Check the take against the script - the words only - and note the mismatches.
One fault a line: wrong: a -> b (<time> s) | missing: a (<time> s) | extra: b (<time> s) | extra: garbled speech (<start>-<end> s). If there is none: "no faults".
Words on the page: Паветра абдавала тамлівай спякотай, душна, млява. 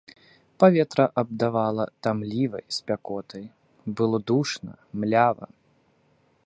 extra: было (3.8 s)